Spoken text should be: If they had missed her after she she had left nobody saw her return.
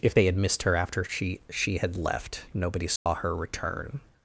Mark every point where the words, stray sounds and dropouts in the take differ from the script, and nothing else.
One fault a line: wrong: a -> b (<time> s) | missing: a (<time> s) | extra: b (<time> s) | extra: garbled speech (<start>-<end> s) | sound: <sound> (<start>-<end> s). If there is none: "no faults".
sound: dropout (3.0-3.1 s)